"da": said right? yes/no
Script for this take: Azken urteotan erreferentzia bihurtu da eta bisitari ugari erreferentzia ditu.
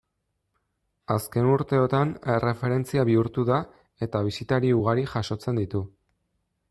yes